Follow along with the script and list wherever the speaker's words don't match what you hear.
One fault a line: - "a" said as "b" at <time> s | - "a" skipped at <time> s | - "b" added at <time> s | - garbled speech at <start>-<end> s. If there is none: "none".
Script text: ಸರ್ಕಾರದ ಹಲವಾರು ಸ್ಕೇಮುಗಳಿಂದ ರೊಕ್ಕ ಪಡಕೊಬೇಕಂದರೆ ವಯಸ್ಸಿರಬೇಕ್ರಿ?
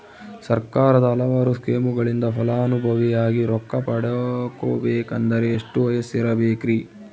- "ಫಲಾನುಭವಿಯಾಗಿ" added at 2.4 s
- "ಎಷ್ಟು" added at 5.5 s